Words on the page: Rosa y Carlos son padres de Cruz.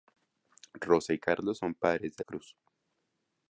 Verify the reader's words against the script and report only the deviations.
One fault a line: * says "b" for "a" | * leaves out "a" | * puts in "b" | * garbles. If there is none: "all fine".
all fine